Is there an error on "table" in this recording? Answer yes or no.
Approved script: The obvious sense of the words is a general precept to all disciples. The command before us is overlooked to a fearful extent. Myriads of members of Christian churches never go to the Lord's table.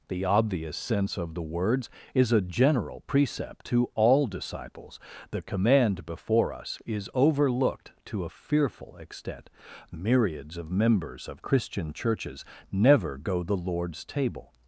no